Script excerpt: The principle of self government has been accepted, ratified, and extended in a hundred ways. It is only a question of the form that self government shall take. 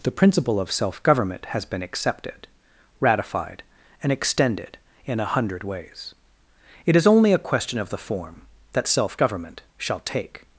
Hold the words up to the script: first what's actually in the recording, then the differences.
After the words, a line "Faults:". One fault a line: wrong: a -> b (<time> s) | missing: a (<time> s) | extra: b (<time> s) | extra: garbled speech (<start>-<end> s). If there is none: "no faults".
The principle of self government has been accepted, ratified, and extended in a hundred ways. It is only a question of the form that self government shall take.
Faults:
no faults